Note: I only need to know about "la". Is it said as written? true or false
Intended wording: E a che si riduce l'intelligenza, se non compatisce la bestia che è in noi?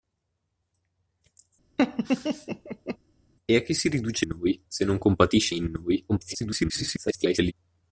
false